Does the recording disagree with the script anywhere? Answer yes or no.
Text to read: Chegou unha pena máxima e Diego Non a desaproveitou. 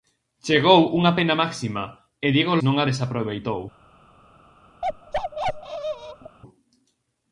no